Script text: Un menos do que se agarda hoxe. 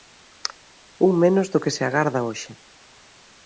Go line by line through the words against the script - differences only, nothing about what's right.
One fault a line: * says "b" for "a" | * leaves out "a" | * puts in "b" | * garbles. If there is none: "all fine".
all fine